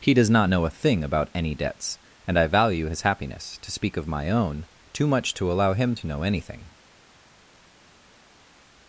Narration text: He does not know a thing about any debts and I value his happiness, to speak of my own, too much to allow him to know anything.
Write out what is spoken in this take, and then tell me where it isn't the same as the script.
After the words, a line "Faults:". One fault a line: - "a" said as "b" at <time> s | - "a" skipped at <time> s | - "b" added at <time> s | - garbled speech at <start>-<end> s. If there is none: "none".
He does not know a thing about any debts and I value his happiness, to speak of my own, too much to allow him to know anything.
Faults:
none